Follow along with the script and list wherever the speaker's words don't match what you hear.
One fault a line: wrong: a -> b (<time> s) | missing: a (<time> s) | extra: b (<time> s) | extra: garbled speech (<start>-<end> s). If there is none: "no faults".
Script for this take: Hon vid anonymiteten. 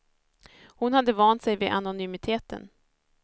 extra: hade vant sig (0.9 s)